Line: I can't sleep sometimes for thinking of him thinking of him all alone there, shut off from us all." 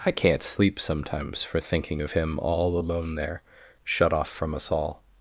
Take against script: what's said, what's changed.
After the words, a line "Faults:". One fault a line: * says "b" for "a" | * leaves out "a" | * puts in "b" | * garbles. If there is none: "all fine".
I can't sleep sometimes for thinking of him all alone there, shut off from us all."
Faults:
* leaves out "thinking of him"